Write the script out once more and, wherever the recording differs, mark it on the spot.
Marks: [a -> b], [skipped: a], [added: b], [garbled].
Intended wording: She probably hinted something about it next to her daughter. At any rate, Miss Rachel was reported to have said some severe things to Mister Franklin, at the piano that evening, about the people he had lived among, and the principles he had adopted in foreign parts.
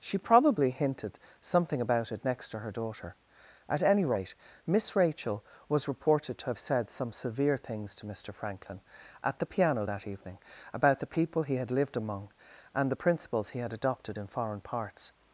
She probably hinted something about it next to her daughter. At any rate, Miss Rachel was reported to have said some severe things to Mister Franklin, at the piano that evening, about the people he had lived among, and the principles he had adopted in foreign parts.